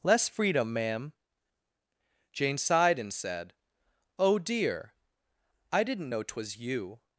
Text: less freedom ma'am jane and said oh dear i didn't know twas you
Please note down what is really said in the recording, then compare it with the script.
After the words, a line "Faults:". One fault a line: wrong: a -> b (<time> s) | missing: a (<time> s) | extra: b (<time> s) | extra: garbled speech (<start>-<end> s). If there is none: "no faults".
less freedom ma'am jane sighed and said oh dear i didn't know twas you
Faults:
extra: sighed (2.6 s)